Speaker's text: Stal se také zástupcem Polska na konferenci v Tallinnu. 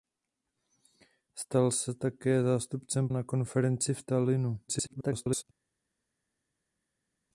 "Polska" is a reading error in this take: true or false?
true